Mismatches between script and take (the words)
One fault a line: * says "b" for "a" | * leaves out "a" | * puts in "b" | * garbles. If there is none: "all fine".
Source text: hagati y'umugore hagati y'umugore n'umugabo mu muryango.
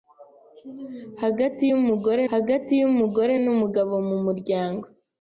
all fine